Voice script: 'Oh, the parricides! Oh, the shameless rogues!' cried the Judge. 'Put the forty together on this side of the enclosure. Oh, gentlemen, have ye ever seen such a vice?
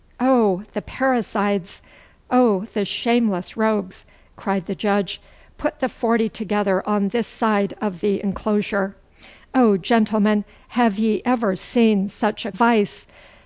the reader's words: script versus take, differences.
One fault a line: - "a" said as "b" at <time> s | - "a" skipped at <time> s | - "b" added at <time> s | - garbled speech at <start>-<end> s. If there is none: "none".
none